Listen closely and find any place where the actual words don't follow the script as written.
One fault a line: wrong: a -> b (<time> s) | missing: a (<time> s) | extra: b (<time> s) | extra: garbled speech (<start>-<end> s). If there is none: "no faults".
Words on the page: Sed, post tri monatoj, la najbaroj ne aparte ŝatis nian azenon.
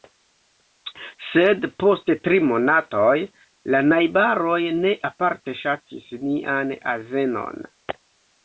no faults